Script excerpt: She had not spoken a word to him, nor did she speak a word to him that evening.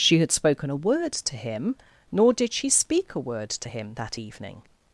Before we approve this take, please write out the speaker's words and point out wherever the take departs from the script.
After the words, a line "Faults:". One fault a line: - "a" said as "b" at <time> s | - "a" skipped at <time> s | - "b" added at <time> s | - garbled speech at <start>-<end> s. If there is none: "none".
She had spoken a word to him, nor did she speak a word to him that evening.
Faults:
- "not" skipped at 0.3 s